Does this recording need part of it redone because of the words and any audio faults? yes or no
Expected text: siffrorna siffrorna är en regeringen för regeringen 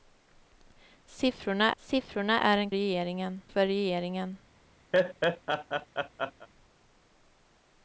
yes